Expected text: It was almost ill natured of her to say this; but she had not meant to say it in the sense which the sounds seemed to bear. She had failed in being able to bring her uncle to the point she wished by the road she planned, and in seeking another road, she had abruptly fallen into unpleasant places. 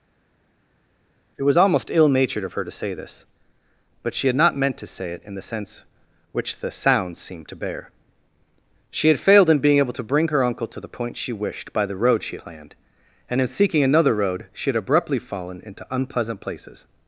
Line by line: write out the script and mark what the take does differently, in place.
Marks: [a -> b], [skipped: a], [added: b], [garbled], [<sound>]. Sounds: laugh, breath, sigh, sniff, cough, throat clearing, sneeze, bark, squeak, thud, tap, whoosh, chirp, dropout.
It was almost ill natured of her to say this; but she had not meant to say it in the sense which the sounds seemed to bear. She had failed in being able to bring her uncle to the point she wished by the road she planned, and in seeking another road, she had abruptly fallen into unpleasant places.